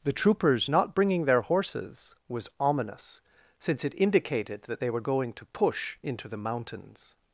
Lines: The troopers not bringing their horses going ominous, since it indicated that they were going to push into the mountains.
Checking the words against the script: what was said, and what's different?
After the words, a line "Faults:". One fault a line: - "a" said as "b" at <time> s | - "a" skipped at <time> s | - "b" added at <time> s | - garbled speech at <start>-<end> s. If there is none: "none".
The troopers not bringing their horses was ominous, since it indicated that they were going to push into the mountains.
Faults:
- "going" said as "was" at 2.3 s